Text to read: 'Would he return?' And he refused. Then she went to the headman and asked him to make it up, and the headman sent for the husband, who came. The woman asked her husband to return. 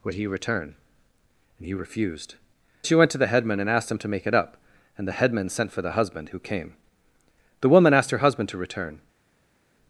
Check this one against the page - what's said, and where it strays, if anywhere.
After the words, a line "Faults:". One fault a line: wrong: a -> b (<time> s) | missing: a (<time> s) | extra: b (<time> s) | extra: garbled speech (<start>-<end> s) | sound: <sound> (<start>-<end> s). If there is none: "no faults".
'Would he return?' And he refused. She went to the headman and asked him to make it up, and the headman sent for the husband, who came. The woman asked her husband to return.
Faults:
missing: Then (2.4 s)